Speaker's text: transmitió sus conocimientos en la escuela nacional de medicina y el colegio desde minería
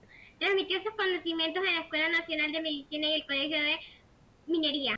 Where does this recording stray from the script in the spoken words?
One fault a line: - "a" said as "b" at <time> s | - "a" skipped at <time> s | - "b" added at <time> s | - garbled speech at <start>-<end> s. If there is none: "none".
- "desde" said as "de" at 3.6 s